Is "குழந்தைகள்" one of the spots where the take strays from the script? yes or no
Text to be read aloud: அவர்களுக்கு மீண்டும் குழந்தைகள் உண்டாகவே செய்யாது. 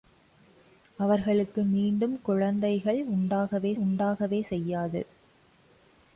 no